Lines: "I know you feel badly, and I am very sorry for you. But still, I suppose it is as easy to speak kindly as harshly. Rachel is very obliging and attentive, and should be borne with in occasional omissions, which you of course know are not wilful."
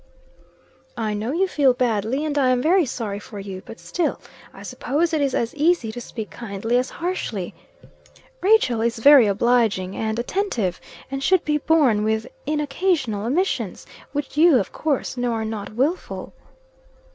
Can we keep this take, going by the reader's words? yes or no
yes